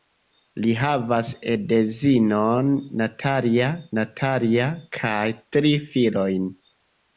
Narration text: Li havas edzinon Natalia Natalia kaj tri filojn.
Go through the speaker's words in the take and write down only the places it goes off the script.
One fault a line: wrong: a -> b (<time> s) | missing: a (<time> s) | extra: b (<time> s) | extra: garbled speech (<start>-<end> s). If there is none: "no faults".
no faults